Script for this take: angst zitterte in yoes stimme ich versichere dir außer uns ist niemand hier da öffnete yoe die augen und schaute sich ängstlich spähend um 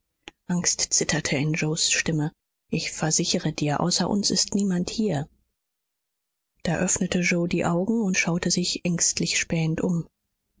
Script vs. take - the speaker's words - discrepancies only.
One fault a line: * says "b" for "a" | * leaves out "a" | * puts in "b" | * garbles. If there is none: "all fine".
all fine